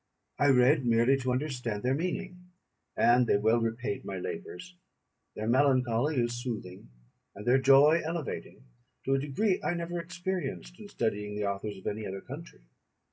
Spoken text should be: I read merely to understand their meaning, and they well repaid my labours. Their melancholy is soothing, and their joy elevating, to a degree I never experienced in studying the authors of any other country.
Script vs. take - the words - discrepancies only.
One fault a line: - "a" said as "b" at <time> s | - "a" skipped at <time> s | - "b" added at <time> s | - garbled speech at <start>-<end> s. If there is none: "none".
none